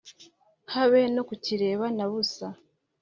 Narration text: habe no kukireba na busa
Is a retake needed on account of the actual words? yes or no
no